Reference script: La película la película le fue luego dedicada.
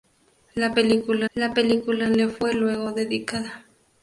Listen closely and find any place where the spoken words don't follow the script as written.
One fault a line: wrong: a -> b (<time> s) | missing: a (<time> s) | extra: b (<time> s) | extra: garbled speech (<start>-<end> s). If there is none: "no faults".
no faults